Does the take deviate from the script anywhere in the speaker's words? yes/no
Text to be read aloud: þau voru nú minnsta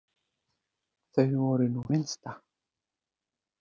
no